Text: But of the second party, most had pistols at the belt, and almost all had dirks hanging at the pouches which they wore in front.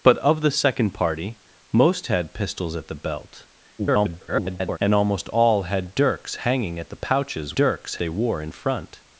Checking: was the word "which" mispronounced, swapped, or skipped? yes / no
yes